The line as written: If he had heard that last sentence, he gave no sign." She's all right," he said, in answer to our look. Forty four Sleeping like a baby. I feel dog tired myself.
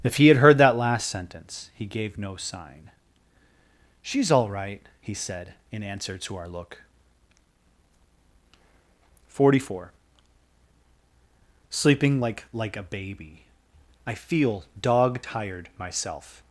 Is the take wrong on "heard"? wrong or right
right